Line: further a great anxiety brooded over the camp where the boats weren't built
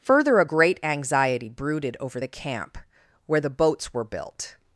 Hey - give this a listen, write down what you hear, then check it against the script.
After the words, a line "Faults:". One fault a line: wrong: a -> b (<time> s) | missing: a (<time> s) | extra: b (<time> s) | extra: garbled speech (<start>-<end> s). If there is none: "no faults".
further a great anxiety brooded over the camp where the boats were built
Faults:
wrong: weren't -> were (3.9 s)